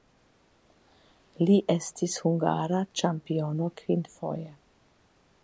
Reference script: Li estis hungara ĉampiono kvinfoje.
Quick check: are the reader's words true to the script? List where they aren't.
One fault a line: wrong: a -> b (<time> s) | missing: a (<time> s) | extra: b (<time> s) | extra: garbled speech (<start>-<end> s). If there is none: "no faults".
no faults